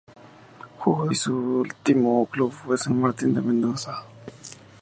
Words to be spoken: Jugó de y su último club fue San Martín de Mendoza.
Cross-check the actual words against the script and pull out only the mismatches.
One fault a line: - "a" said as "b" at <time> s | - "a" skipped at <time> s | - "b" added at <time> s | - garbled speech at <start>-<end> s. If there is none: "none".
none